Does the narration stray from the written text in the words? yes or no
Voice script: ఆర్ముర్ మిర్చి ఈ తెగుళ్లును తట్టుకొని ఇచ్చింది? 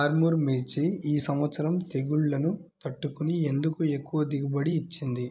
yes